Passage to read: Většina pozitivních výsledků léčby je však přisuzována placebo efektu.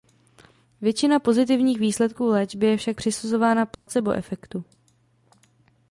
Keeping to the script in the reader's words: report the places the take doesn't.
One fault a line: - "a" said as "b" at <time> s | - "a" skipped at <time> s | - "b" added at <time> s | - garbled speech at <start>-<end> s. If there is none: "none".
none